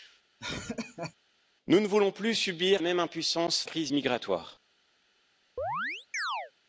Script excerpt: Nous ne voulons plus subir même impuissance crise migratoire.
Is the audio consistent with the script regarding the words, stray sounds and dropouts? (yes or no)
no